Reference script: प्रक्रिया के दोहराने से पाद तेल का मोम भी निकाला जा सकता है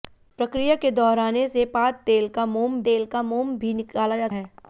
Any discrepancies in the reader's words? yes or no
yes